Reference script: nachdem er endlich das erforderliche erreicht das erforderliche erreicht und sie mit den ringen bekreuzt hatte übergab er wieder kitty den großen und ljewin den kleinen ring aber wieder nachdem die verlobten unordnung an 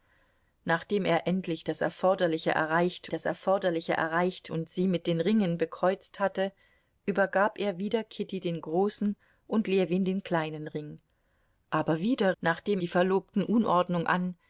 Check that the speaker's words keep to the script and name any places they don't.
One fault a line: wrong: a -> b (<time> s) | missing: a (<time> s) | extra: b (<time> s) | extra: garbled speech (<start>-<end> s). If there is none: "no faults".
no faults